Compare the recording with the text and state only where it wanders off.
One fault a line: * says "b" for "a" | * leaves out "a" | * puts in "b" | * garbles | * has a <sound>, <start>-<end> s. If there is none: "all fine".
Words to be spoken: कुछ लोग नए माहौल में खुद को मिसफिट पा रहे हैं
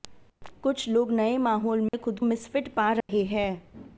* has a dropout, 1.9-1.9 s
* leaves out "को"
* has a dropout, 3.0-3.1 s